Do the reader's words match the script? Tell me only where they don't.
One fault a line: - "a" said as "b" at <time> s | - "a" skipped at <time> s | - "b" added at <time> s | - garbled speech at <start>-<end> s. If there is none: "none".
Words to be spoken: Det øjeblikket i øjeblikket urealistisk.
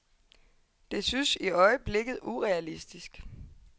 - "øjeblikket" said as "synes" at 1.0 s